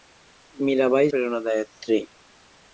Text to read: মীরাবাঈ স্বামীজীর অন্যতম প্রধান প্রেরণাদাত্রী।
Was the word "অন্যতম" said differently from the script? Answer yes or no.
yes